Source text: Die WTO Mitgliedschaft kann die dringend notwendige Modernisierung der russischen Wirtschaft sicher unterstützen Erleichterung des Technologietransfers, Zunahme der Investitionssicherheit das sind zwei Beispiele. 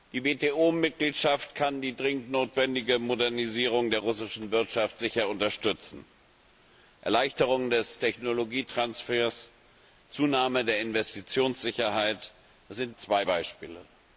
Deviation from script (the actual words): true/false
false